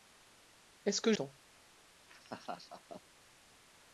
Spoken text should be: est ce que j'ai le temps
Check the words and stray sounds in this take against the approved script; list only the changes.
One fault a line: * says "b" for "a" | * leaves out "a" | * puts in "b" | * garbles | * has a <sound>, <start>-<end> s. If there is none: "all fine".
* leaves out "j'ai le"
* has a laugh, 2.1-3.0 s